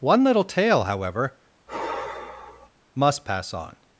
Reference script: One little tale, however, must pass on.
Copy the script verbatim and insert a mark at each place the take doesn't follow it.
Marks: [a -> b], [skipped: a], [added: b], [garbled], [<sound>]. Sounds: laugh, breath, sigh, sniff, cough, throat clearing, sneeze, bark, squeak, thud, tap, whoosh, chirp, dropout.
One little tale, however, [sigh] must pass on.